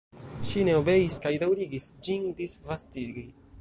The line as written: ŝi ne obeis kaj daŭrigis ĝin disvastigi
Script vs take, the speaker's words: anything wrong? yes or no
no